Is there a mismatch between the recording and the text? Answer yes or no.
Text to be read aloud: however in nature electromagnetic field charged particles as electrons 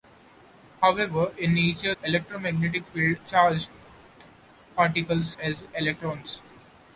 no